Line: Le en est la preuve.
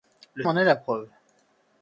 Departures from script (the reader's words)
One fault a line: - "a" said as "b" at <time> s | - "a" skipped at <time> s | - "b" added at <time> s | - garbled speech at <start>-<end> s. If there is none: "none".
none